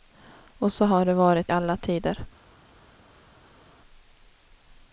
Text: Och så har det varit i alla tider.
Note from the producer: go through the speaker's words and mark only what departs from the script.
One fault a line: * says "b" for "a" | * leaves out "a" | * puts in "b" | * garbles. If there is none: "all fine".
all fine